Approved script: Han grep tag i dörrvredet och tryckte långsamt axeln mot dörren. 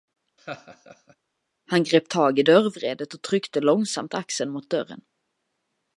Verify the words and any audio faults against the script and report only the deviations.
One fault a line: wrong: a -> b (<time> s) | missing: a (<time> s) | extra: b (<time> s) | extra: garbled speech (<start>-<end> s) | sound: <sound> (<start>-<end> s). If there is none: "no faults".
sound: laugh (0.4-1.2 s)